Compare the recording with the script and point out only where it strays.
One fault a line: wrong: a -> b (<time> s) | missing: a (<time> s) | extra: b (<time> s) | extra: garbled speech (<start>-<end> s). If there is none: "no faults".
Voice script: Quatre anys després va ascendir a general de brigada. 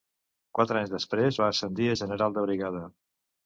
no faults